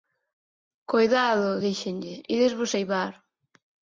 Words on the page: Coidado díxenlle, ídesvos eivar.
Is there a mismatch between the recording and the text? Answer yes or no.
no